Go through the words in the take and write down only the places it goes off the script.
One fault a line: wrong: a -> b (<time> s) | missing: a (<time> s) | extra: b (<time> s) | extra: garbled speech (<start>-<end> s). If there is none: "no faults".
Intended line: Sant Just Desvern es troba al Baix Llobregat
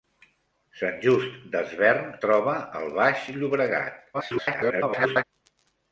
missing: es (2.1 s)
extra: garbled speech (4.1-5.2 s)